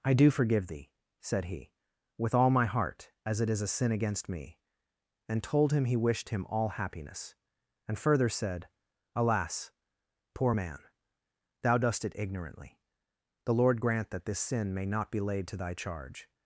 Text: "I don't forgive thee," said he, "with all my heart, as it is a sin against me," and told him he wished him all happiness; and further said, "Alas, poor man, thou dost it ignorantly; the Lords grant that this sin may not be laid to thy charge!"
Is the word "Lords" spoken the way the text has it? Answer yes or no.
no